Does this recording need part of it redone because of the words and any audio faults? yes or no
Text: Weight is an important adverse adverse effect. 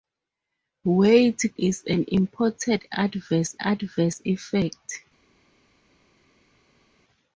no